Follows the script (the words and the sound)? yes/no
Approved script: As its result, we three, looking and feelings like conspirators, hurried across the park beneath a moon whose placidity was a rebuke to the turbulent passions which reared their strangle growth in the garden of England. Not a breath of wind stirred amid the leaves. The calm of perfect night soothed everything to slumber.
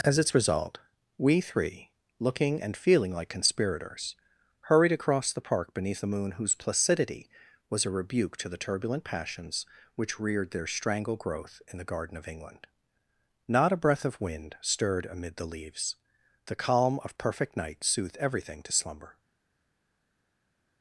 no